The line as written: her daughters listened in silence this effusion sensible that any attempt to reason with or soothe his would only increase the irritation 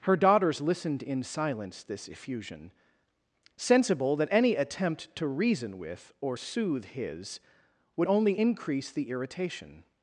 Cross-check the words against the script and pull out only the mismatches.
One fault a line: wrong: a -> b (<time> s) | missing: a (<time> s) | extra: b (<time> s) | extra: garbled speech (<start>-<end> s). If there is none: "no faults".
no faults